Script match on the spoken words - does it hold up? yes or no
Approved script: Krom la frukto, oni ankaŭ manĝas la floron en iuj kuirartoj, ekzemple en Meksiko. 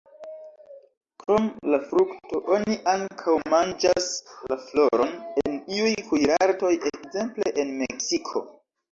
yes